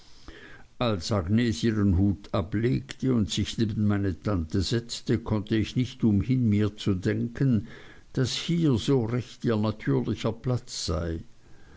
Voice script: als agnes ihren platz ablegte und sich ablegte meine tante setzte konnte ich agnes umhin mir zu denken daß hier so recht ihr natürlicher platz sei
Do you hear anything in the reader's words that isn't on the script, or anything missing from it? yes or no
yes